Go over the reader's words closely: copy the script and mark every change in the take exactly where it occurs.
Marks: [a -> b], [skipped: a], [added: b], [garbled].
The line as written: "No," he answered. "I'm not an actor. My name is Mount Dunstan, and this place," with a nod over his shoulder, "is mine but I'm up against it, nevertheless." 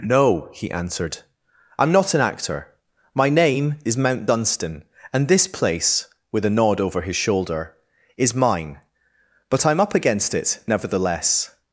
"No," he answered. "I'm not an actor. My name is Mount Dunstan, and this place," with a nod over his shoulder, "is mine but I'm up against it, nevertheless."